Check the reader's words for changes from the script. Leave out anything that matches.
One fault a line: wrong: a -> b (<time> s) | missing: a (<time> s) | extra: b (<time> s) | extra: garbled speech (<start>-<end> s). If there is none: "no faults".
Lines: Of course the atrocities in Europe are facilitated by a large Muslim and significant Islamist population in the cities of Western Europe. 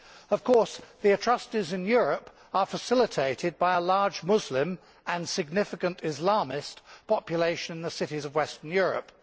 no faults